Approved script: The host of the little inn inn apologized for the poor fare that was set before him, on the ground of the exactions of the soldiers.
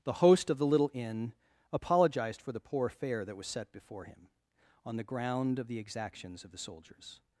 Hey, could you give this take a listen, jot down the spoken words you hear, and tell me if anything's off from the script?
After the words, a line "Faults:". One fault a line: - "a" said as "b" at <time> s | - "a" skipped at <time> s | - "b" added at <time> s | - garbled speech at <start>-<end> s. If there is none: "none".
The host of the little inn apologized for the poor fare that was set before him, on the ground of the exactions of the soldiers.
Faults:
- "inn" skipped at 1.3 s